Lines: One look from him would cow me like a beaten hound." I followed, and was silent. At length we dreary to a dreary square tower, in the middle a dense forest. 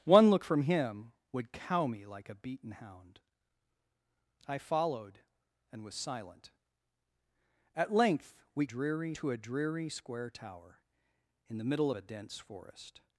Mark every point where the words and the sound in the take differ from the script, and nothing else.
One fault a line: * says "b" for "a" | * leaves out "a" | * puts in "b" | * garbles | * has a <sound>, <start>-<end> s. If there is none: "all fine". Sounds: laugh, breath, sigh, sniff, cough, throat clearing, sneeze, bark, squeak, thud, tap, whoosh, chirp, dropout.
all fine